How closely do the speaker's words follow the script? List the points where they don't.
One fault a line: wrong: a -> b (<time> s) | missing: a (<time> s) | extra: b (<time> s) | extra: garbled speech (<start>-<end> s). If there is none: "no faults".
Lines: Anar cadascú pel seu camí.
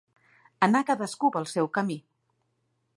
no faults